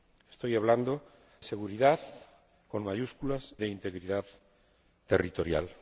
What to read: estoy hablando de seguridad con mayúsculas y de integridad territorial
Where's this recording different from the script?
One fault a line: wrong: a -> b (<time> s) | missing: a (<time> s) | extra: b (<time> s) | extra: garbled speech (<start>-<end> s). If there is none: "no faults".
missing: de (1.0 s)
missing: y (3.5 s)